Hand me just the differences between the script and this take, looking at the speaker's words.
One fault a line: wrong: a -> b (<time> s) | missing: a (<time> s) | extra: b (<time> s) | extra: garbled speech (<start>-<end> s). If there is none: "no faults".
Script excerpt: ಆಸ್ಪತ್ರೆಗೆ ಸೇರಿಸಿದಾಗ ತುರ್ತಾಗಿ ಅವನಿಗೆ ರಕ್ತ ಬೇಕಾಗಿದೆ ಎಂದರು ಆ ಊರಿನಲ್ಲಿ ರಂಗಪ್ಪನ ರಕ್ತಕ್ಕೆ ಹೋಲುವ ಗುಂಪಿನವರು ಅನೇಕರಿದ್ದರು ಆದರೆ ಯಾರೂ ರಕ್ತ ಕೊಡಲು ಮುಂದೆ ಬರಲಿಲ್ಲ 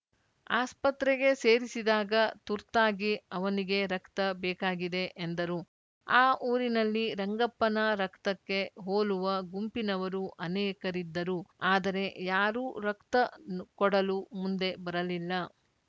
no faults